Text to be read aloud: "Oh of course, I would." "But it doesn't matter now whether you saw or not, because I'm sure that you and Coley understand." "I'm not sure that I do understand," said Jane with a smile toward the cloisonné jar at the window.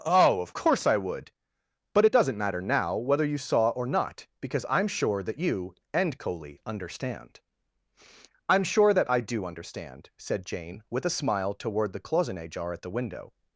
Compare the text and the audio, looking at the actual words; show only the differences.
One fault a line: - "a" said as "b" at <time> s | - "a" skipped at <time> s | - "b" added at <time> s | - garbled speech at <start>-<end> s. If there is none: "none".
- "not" skipped at 8.6 s